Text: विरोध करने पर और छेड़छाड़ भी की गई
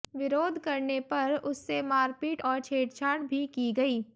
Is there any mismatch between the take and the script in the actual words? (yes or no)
yes